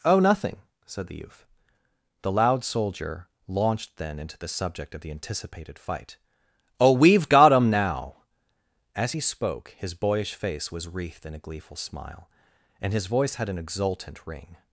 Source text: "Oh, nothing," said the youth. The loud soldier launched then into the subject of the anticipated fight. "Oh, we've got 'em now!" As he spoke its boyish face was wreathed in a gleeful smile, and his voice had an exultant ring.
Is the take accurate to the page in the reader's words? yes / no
no